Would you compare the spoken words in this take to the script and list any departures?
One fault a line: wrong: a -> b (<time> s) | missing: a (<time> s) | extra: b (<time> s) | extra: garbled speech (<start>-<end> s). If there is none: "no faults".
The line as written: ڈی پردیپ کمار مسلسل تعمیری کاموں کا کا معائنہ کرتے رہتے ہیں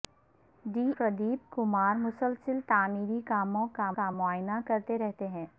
no faults